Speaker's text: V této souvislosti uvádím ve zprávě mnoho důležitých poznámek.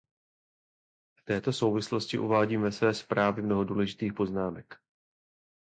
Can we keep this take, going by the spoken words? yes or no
no